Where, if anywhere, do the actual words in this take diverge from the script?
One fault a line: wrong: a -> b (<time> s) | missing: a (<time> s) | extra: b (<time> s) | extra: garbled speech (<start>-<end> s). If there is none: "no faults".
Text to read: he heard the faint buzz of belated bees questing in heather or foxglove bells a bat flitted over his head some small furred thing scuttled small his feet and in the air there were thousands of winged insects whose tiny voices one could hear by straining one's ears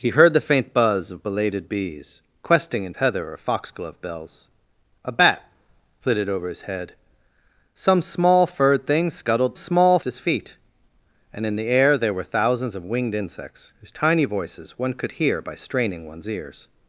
no faults